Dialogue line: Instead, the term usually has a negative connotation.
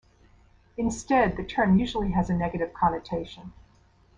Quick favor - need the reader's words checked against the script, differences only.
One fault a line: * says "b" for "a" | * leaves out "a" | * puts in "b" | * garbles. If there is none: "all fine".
all fine